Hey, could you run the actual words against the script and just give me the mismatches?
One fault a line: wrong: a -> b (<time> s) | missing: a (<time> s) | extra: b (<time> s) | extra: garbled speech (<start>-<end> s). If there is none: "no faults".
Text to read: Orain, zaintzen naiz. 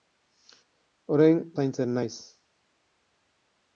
no faults